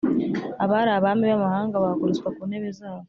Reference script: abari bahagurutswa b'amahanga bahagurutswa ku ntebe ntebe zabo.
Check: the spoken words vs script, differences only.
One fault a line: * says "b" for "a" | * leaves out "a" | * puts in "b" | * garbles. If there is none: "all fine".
* says "abami" for "bahagurutswa"
* leaves out "ntebe"